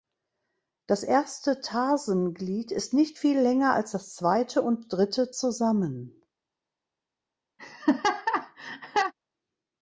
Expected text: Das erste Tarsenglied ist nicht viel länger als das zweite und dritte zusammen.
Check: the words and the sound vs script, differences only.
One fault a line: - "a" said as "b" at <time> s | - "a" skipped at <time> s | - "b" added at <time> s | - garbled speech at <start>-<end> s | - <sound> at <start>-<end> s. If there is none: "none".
- laugh at 7.6-9.1 s